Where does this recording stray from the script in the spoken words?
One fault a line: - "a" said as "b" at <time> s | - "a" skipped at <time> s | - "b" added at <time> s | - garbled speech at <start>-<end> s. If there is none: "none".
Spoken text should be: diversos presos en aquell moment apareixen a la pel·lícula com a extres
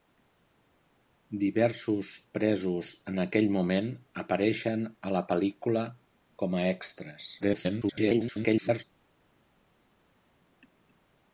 - garbled speech at 7.4-8.8 s